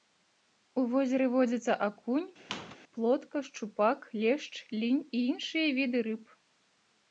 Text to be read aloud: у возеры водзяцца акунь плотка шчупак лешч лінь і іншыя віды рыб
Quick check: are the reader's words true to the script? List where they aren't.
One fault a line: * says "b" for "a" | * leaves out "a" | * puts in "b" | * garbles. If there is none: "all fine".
all fine